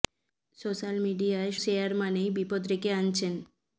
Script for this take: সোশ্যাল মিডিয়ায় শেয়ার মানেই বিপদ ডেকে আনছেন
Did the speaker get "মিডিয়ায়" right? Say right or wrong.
right